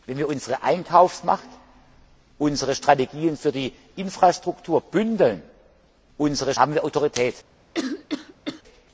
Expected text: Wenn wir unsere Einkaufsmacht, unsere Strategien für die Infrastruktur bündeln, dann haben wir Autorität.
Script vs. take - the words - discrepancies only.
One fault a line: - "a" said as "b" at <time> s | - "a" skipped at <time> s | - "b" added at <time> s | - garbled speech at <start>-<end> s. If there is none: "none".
- "dann" said as "unsere" at 6.2 s